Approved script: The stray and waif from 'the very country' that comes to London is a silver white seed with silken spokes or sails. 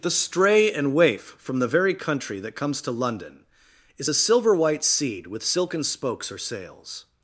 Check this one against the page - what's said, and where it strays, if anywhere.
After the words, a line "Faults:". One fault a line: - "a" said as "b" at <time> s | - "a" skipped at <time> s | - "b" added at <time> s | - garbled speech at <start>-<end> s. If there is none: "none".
The stray and waif from 'the very country' that comes to London is a silver white seed with silken spokes or sails.
Faults:
none